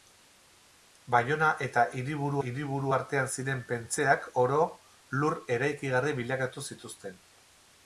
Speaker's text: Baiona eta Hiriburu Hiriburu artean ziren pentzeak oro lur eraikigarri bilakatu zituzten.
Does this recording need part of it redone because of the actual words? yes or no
no